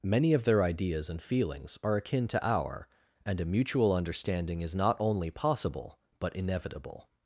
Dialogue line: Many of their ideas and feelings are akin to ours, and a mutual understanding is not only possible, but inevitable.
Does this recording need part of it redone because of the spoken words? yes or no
yes